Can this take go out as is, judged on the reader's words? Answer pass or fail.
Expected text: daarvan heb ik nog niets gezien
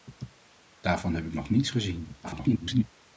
fail